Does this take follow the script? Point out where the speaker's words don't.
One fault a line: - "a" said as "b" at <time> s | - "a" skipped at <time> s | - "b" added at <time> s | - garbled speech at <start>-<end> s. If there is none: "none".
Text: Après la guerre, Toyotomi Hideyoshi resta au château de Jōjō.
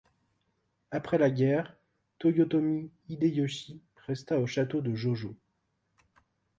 none